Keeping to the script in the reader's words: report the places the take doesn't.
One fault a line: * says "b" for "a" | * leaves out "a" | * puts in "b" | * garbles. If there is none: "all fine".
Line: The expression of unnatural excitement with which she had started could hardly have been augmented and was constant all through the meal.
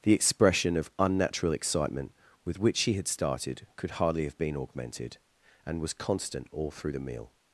all fine